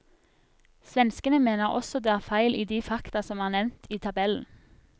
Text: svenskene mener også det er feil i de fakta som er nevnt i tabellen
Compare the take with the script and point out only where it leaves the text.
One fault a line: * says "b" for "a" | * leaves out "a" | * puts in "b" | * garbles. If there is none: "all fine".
all fine